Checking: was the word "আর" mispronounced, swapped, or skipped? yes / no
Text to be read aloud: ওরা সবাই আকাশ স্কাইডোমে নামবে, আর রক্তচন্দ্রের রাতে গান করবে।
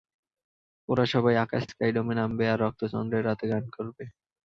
no